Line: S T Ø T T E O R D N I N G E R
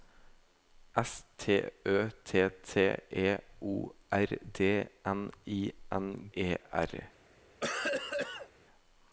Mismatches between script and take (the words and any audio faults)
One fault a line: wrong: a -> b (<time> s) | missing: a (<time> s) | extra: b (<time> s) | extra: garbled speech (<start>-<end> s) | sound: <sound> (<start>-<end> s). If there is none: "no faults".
missing: G (6.3 s)
sound: cough (7.6-8.5 s)